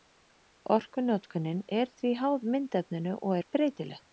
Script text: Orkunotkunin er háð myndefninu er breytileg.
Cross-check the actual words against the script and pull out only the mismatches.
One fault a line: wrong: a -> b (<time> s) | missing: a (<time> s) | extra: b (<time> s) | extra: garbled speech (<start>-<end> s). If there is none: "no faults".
extra: því (2.0 s)
extra: og (3.2 s)